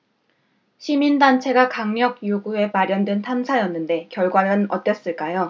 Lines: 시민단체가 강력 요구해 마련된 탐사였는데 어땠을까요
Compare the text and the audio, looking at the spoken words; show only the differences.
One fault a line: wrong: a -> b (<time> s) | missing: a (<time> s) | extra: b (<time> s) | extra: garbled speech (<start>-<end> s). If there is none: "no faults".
extra: 결과는 (4.1 s)